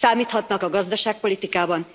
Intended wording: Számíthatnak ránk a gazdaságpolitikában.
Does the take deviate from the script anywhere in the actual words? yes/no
yes